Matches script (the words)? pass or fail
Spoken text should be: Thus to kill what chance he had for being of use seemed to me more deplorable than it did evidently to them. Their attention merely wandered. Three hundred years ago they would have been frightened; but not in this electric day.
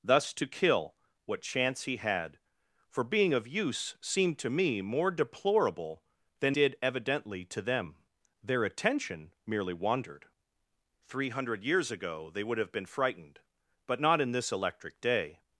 fail